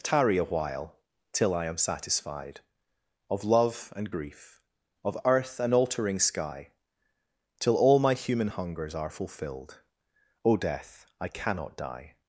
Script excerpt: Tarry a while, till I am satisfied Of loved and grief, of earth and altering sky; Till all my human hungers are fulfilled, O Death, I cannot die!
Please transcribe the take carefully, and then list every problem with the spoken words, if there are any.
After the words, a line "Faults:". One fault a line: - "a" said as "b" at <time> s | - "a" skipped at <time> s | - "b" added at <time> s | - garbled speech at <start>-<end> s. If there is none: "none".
Tarry a while, till I am satisfied Of love and grief, of earth and altering sky; Till all my human hungers are fulfilled, O Death, I cannot die!
Faults:
- "loved" said as "love" at 3.4 s